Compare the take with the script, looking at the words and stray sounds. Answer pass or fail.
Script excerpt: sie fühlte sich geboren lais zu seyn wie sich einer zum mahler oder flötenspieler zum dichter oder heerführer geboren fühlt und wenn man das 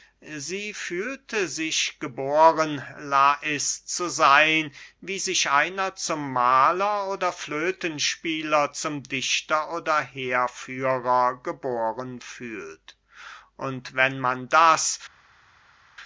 pass